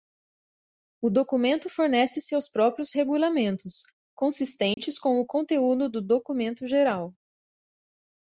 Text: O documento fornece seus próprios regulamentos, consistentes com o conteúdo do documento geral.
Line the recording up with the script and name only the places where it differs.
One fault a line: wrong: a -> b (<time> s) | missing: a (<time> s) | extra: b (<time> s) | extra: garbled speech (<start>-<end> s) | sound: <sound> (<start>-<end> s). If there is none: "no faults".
sound: dropout (4.7-4.8 s)